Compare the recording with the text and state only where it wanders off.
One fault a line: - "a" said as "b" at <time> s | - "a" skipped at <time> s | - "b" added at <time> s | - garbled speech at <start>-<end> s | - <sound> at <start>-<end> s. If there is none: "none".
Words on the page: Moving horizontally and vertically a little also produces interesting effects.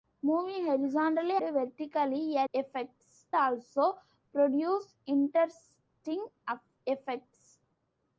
- "and" skipped at 1.4 s
- "little" said as "effects" at 2.5 s